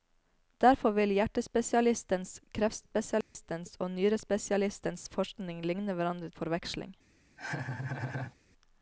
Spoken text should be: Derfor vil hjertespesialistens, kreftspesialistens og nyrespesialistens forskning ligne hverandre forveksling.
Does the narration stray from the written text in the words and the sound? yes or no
yes